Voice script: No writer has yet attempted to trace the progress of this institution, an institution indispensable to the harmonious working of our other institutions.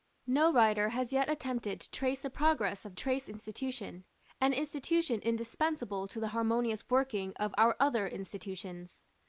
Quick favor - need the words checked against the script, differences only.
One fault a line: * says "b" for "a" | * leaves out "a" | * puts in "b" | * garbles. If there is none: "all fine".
* says "trace" for "this"